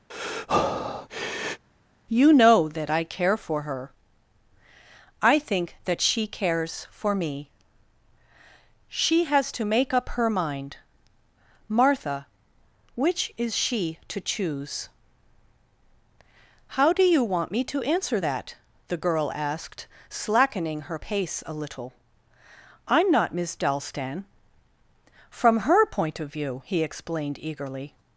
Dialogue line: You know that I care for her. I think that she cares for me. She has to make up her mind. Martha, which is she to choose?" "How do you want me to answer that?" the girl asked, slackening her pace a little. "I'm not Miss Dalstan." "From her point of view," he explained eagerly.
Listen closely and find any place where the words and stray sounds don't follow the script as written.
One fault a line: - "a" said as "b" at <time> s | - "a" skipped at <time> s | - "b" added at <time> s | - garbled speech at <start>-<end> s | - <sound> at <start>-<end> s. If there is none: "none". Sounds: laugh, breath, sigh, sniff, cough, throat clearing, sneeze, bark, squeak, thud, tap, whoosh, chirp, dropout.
- breath at 0.1-1.6 s